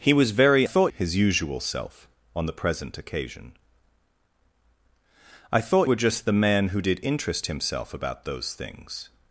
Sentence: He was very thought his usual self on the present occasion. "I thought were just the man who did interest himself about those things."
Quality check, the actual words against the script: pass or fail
pass